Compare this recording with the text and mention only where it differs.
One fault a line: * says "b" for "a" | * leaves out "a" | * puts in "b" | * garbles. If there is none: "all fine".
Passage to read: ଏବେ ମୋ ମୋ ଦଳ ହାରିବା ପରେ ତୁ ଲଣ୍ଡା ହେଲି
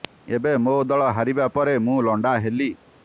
* leaves out "ମୋ"
* says "ମୁଁ" for "ତୁ"